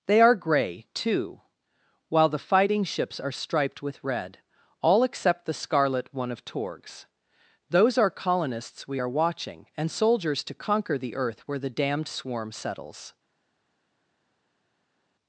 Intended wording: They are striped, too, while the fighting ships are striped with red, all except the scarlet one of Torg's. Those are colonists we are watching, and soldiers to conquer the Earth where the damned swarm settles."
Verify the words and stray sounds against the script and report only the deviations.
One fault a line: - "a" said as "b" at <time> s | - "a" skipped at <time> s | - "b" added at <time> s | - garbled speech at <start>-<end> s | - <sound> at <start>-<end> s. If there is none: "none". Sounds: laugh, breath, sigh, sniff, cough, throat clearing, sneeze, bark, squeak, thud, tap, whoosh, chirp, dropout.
- "striped" said as "gray" at 0.3 s